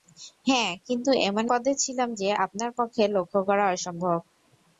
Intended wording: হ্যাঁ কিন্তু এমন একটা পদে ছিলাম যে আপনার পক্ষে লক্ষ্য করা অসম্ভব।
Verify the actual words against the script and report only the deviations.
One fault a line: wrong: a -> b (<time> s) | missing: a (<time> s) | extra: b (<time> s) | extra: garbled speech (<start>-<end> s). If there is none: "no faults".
missing: একটা (1.4 s)